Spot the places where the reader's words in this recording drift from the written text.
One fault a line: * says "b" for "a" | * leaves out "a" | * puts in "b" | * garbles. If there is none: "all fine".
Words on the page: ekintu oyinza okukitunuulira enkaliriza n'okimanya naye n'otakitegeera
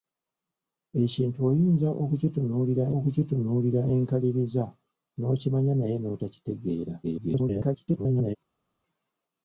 * puts in "okukitunuulira"
* garbles